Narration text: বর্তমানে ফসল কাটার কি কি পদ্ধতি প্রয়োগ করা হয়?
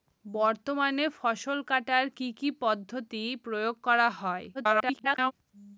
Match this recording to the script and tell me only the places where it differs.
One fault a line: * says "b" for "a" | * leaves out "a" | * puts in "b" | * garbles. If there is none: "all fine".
* garbles